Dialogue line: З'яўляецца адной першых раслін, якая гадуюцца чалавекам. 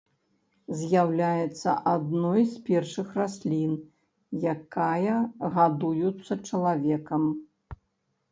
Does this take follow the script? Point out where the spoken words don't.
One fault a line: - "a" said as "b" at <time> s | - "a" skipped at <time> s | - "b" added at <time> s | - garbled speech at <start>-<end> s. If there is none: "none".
- "з" added at 2.5 s